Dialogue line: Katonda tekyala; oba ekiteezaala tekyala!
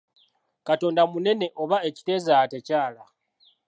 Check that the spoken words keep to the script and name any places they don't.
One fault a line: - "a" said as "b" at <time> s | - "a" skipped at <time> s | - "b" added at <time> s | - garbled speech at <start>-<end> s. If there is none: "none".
- "tekyala" said as "munene" at 1.1 s